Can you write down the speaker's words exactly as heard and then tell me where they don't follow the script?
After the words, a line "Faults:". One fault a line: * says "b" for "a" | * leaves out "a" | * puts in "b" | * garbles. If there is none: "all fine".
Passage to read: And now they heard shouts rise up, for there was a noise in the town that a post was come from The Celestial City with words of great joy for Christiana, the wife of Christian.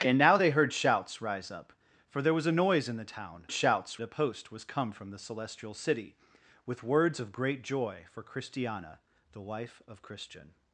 And now they heard shouts rise up, for there was a noise in the town shouts a post was come from The Celestial City with words of great joy for Christiana, the wife of Christian.
Faults:
* says "shouts" for "that"